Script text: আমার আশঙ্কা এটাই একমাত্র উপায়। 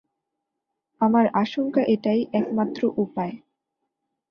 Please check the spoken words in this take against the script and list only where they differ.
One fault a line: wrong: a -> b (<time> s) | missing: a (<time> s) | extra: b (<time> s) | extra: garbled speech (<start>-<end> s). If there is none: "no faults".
no faults